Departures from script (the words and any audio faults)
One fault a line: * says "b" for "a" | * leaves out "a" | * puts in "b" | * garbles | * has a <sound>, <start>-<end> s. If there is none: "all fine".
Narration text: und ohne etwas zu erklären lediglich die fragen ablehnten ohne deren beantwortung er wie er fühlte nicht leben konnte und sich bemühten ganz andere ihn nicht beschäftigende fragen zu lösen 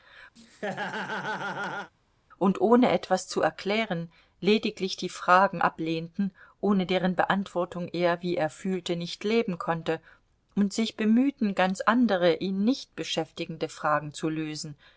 * has a laugh, 0.4-1.9 s